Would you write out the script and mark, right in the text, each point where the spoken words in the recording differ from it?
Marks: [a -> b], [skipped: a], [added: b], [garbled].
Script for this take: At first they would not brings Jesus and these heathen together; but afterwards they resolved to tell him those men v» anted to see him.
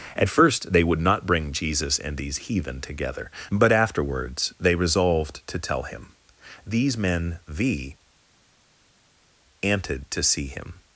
At first they would not [brings -> bring] Jesus and these heathen together; but afterwards they resolved to tell him [those -> these] men v» anted to see him.